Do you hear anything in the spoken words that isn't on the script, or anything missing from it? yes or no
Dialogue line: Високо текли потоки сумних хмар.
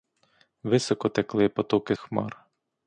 yes